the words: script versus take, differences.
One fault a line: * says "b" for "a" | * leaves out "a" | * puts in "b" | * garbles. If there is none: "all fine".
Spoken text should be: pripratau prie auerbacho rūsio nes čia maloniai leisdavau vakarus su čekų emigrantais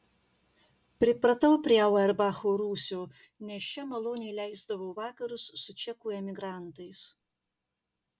all fine